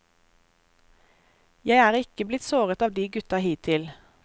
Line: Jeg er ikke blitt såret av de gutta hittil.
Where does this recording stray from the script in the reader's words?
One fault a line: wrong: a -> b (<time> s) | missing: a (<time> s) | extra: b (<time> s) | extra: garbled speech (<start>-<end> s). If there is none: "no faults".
no faults